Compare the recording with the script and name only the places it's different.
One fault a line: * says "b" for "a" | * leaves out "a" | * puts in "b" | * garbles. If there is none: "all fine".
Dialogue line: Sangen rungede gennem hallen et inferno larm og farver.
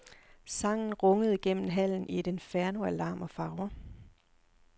* puts in "i"
* puts in "af"